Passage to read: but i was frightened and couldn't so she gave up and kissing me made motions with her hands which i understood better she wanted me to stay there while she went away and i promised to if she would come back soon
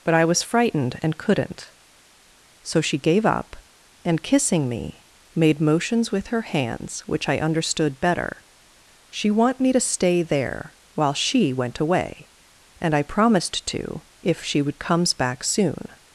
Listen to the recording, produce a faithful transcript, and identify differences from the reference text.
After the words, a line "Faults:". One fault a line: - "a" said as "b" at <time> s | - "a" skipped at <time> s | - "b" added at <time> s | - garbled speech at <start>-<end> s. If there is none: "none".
but i was frightened and couldn't so she gave up and kissing me made motions with her hands which i understood better she want me to stay there while she went away and i promised to if she would comes back soon
Faults:
- "wanted" said as "want" at 9.3 s
- "come" said as "comes" at 14.8 s